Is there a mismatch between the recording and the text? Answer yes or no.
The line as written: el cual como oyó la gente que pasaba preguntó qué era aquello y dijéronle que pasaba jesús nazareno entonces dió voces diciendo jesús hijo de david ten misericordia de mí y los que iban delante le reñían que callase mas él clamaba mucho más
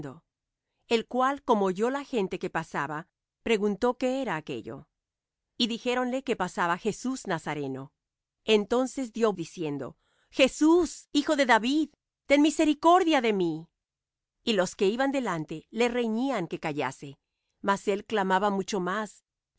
yes